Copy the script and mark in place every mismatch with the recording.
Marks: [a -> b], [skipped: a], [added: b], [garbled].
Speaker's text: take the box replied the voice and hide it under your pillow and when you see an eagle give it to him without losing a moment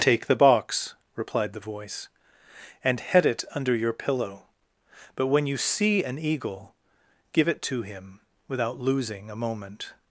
take the box replied the voice and [hide -> head] it under your pillow [and -> but] when you see an eagle give it to him without losing a moment